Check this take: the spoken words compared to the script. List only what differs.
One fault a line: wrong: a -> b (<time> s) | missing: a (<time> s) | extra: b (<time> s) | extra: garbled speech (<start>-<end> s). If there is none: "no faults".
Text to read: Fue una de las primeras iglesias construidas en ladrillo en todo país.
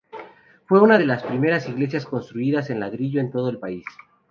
extra: el (3.5 s)